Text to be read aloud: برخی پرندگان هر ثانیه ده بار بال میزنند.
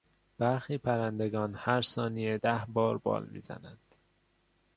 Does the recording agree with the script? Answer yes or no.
yes